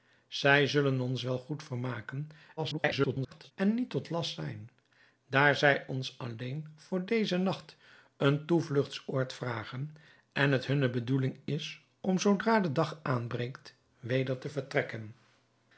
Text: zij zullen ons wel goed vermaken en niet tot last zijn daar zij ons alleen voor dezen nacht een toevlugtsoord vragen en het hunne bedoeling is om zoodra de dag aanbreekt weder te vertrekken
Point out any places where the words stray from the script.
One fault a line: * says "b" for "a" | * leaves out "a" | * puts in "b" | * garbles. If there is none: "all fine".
* garbles